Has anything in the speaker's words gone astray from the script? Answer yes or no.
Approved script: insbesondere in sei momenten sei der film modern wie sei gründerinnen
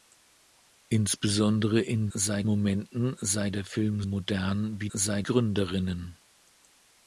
no